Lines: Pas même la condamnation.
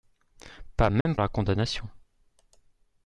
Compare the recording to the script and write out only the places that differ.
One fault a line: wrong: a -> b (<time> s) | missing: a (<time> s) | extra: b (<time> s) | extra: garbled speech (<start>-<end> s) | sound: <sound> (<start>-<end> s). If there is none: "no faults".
sound: dropout (1.0-1.1 s)